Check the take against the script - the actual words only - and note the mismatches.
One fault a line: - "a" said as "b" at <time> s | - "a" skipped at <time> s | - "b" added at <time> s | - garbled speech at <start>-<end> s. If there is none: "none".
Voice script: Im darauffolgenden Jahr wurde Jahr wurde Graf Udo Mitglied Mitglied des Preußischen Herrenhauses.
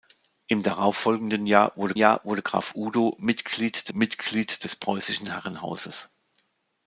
none